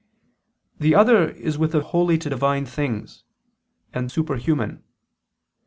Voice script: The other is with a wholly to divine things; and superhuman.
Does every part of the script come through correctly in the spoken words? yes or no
yes